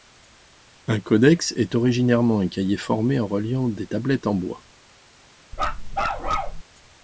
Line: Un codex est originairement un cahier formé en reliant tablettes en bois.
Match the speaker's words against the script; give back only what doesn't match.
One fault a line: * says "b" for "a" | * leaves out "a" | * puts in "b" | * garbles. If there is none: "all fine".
* puts in "des"